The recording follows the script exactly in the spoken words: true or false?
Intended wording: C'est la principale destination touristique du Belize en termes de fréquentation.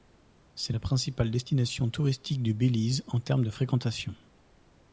true